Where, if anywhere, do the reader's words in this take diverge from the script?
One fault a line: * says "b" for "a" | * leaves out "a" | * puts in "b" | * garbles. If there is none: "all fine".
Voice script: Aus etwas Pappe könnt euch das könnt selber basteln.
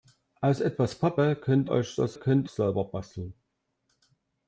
all fine